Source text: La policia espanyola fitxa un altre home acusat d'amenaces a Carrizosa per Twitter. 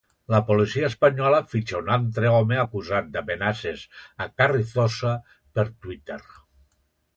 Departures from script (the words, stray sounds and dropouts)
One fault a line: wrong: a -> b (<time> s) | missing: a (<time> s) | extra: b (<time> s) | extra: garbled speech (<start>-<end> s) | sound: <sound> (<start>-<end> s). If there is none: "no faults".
no faults